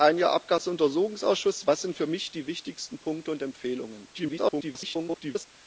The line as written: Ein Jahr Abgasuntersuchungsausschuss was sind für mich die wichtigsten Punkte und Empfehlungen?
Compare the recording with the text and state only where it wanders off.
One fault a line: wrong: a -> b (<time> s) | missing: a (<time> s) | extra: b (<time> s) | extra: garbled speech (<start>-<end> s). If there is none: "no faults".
extra: garbled speech (4.1-5.5 s)